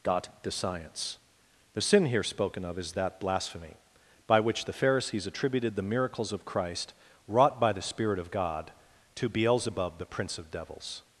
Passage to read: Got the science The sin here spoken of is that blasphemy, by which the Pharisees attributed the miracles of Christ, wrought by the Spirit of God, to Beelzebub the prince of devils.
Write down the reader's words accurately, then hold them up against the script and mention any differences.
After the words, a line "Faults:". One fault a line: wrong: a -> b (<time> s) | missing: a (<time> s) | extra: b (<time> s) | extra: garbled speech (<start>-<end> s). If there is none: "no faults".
Got the science The sin here spoken of is that blasphemy, by which the Pharisees attributed the miracles of Christ, wrought by the Spirit of God, to Beelzebub the prince of devils.
Faults:
no faults